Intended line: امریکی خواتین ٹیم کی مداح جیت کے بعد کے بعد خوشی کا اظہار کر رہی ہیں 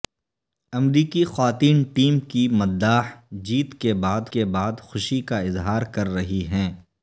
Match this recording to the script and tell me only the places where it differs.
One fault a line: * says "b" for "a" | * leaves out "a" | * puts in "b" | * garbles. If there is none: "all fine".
all fine